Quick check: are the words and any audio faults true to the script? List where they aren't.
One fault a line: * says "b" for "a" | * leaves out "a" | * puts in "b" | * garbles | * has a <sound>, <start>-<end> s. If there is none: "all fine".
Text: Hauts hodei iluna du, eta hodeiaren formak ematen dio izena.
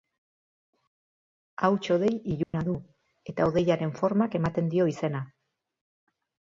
* has a dropout, 2.4-2.5 s